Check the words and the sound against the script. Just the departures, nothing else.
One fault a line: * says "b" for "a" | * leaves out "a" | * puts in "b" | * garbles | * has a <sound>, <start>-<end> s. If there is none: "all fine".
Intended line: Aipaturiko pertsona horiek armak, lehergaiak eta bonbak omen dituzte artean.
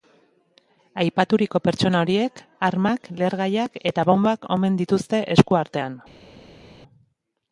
* puts in "esku"